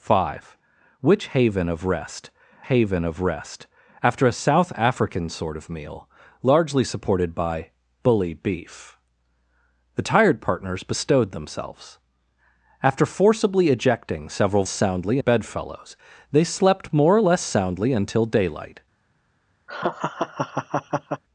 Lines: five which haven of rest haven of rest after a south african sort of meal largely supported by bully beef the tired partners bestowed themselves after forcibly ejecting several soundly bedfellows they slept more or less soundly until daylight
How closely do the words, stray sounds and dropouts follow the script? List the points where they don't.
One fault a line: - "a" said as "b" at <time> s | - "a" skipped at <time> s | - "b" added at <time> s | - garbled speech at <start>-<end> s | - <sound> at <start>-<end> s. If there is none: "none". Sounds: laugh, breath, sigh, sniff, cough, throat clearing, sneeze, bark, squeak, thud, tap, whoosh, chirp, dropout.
- laugh at 19.7-21.2 s